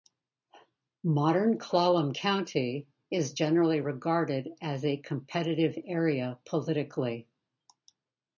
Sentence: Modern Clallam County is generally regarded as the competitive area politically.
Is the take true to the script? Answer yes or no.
no